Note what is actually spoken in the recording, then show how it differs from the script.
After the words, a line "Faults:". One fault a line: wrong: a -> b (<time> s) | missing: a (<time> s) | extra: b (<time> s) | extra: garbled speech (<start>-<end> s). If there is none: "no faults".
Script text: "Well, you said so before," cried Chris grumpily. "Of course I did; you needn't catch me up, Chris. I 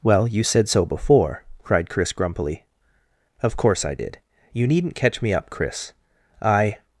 "Well, you said so before," cried Chris grumpily. "Of course I did; you needn't catch me up, Chris. I
Faults:
no faults